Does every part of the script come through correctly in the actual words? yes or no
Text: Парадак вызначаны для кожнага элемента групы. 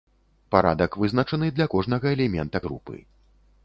yes